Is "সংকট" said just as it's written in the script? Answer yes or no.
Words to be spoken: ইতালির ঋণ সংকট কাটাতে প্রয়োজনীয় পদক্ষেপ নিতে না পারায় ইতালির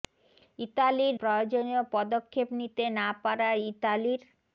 no